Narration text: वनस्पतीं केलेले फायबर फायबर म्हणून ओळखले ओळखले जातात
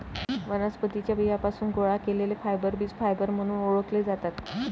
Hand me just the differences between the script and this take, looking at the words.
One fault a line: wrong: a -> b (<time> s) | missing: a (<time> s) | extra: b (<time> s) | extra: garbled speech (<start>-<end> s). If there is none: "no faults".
extra: च्या बियांपासून गोळा (1.0 s)
extra: बीज (2.8 s)
missing: ओळखले (4.0 s)